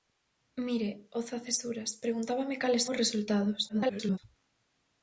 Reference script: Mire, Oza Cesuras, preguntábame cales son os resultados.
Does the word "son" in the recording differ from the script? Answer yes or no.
yes